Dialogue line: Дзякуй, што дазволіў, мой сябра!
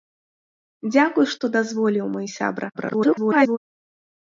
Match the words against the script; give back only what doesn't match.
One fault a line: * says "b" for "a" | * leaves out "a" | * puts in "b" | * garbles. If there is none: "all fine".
* garbles